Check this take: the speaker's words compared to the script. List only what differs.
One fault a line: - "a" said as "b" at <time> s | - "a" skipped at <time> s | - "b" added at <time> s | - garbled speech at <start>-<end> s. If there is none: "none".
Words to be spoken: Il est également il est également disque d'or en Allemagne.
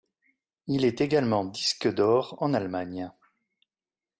- "il est également" skipped at 1.4 s